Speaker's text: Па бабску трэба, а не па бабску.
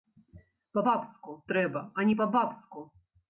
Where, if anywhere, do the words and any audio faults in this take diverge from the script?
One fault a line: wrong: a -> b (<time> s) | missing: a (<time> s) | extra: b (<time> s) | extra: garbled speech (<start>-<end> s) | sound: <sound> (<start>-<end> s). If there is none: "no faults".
no faults